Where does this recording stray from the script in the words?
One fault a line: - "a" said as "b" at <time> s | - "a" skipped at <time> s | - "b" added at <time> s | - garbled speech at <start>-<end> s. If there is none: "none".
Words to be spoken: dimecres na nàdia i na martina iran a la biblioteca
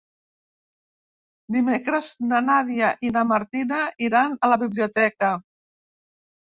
none